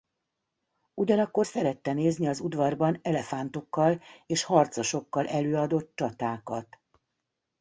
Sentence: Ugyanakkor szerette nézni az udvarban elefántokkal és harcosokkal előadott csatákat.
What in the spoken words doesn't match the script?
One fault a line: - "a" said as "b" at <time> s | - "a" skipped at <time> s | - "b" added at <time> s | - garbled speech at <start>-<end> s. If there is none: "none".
none